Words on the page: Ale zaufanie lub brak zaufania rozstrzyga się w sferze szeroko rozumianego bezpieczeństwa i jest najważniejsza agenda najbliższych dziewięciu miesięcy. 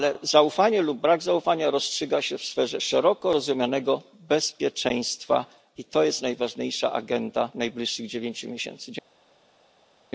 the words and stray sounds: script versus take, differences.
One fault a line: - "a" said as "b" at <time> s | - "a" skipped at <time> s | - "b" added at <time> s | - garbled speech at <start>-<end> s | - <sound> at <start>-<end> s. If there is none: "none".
- "to" added at 5.8 s